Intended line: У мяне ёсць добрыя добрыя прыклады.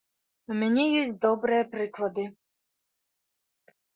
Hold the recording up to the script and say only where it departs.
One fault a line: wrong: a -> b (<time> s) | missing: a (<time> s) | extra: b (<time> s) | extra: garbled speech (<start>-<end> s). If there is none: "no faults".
missing: добрыя (1.7 s)